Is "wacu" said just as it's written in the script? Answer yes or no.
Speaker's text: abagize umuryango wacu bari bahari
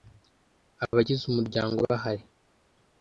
no